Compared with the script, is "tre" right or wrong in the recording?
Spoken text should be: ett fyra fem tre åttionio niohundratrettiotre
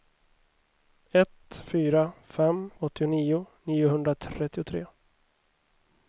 wrong